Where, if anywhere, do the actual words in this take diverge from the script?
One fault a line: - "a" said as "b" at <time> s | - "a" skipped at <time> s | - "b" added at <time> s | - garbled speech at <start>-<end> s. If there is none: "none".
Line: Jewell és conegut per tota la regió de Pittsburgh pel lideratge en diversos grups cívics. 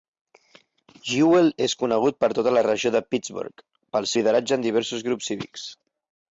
none